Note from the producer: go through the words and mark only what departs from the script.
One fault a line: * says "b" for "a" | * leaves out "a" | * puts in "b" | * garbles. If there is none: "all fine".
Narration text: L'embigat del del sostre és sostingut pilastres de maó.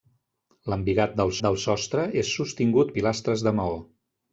all fine